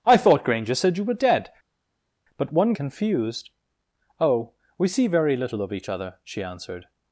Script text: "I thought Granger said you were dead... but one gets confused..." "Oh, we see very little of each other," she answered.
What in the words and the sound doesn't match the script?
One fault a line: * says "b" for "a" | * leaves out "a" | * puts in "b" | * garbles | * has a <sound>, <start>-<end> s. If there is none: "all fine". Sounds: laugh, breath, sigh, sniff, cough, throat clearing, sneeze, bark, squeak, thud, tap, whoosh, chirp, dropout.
* leaves out "gets"